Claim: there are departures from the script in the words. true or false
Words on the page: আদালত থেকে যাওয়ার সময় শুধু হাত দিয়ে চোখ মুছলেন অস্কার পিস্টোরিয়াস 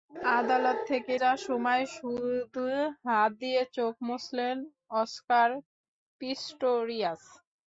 false